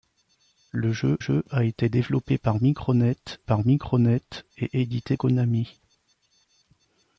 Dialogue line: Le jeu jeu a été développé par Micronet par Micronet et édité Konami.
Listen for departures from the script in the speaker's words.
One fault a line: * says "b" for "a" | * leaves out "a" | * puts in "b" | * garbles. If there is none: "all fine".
all fine